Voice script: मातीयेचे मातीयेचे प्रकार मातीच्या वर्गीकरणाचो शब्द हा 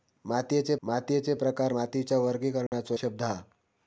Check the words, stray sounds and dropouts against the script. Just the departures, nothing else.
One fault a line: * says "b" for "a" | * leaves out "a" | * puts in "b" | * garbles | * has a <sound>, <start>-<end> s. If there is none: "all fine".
* has a dropout, 2.7-2.7 s